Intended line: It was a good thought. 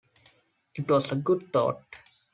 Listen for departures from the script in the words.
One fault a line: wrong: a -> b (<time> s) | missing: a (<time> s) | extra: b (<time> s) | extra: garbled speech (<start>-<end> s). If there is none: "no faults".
no faults